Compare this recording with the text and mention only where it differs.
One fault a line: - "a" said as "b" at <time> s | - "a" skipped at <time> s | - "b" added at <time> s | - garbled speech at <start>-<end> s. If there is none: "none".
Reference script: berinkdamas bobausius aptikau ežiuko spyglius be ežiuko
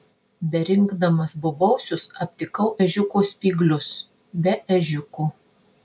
none